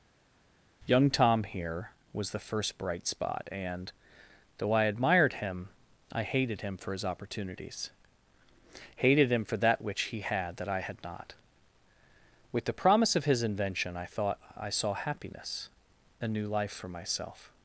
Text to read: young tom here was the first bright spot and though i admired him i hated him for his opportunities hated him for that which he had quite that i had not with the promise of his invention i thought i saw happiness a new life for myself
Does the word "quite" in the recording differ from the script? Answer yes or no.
yes